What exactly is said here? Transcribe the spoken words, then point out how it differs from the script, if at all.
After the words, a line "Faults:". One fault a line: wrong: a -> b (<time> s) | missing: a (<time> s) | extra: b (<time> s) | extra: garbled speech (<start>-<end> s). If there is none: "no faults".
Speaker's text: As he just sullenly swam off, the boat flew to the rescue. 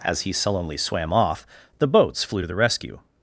As he sullenly swam off, the boats flew to the rescue.
Faults:
missing: just (0.3 s)
wrong: boat -> boats (1.9 s)